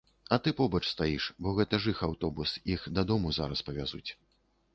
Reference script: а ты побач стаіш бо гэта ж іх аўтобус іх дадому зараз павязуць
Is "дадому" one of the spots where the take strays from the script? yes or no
no